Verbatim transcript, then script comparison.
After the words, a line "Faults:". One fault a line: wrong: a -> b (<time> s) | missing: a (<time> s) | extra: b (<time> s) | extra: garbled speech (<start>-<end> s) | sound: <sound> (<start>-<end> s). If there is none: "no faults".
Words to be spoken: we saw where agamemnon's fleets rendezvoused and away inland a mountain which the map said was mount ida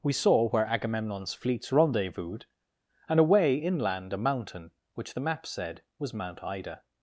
we saw where agamemnon's fleets rendezvoused and away inland a mountain which the map said was mount ida
Faults:
no faults